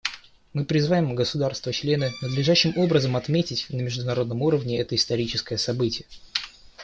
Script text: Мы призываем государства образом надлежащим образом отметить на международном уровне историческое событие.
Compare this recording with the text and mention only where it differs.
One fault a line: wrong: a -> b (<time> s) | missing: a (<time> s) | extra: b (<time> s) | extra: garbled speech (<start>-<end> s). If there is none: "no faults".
wrong: образом -> члены (1.7 s)
extra: это (4.8 s)